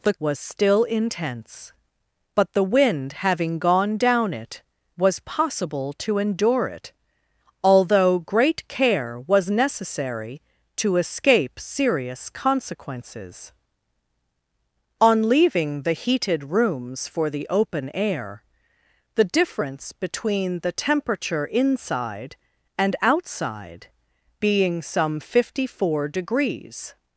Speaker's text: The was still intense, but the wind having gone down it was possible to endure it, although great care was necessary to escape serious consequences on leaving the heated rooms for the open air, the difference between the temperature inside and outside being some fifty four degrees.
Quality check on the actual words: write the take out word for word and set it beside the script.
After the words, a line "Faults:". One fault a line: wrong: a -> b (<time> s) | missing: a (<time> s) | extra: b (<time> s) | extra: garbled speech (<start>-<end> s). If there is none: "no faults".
The was still intense, but the wind having gone down it was possible to endure it, although great care was necessary to escape serious consequences on leaving the heated rooms for the open air, the difference between the temperature inside and outside being some fifty four degrees.
Faults:
no faults